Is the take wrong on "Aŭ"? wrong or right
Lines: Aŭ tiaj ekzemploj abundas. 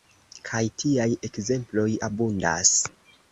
wrong